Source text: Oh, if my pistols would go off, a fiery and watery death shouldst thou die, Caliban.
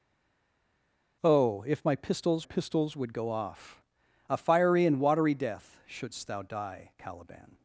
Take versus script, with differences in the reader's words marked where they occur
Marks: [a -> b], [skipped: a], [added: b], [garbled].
Oh, if my pistols [added: pistols] would go off, a fiery and watery death shouldst thou die, Caliban.